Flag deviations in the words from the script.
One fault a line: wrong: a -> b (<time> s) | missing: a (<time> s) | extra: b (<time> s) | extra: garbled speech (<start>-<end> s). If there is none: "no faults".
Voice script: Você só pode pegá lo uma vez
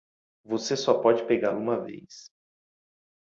no faults